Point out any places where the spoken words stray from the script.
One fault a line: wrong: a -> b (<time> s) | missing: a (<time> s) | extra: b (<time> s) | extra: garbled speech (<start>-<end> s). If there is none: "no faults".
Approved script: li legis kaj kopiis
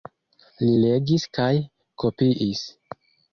no faults